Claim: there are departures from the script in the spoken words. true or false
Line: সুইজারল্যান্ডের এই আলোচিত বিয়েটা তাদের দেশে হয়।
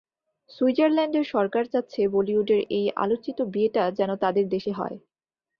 true